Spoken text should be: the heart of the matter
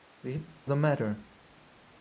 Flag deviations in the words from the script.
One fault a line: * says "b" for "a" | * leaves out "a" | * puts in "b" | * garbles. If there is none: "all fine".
* leaves out "heart of"